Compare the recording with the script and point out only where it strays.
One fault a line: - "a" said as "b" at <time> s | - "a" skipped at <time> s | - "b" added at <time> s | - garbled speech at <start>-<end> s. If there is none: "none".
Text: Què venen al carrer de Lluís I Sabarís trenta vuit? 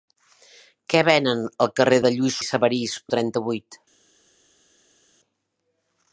none